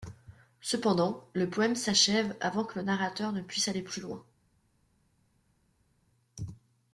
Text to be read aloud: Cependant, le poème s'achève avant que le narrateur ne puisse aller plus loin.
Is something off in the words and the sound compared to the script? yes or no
no